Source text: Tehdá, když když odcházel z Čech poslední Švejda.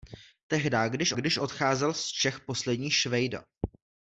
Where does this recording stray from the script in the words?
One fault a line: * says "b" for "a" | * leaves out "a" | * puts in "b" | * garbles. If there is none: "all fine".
all fine